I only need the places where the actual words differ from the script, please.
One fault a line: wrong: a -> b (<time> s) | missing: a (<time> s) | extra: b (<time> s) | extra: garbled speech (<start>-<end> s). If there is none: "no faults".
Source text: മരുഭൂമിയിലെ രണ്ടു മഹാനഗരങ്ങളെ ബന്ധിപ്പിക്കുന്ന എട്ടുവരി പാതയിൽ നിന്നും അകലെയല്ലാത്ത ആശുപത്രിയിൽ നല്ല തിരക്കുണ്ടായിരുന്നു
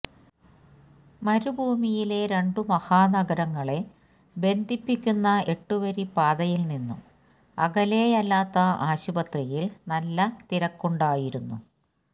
no faults